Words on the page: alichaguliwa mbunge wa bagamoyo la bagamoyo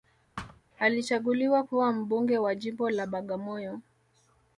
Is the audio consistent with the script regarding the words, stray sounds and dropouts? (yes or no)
no